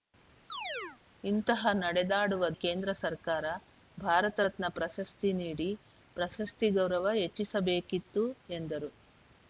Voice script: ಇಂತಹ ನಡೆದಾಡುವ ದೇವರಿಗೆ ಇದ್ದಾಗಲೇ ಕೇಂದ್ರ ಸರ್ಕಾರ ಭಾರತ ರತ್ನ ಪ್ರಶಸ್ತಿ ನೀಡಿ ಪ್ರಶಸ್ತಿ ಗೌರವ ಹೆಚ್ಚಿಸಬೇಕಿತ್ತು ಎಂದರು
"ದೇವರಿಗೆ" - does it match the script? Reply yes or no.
no